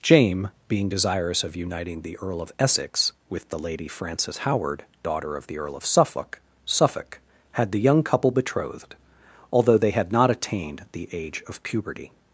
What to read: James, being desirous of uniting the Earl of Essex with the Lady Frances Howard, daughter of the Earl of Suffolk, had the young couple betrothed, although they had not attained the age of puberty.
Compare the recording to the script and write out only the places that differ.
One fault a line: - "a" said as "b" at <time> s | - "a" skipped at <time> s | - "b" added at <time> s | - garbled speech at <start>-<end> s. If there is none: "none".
- "Suffolk" added at 6.6 s